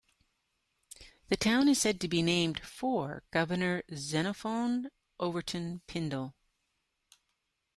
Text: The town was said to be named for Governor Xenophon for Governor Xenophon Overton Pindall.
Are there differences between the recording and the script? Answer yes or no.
yes